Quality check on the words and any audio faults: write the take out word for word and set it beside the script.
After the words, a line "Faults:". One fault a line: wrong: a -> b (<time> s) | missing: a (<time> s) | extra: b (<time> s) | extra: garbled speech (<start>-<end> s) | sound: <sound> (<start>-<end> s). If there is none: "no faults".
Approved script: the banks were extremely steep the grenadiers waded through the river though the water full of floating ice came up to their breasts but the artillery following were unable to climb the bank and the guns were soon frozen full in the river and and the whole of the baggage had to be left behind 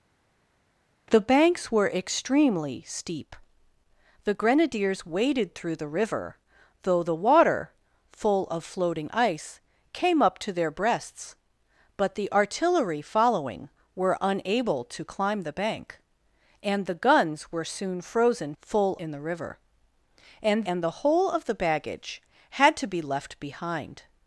the banks were extremely steep the grenadiers waded through the river though the water full of floating ice came up to their breasts but the artillery following were unable to climb the bank and the guns were soon frozen full in the river and and the whole of the baggage had to be left behind
Faults:
no faults